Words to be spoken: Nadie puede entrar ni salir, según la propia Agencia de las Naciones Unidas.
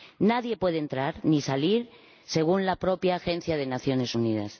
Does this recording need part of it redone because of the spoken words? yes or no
no